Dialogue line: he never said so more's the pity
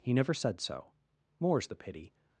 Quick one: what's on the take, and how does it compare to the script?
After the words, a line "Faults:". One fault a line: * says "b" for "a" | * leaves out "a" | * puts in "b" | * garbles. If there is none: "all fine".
he never said so more's the pity
Faults:
all fine